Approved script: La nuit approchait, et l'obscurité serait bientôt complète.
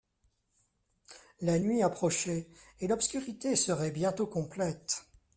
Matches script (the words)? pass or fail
pass